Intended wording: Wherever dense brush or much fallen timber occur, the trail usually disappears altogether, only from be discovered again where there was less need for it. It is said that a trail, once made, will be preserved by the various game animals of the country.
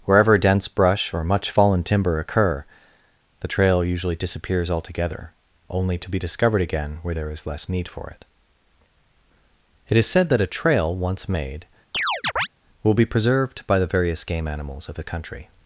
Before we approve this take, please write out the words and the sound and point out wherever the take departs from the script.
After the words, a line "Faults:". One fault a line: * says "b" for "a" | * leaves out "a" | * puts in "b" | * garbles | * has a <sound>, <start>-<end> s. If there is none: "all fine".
Wherever dense brush or much fallen timber occur, the trail usually disappears altogether, only to be discovered again where there is less need for it. It is said that a trail, once made, will be preserved by the various game animals of the country.
Faults:
* says "to" for "from"
* says "is" for "was"
* has a chirp, 11.9-12.5 s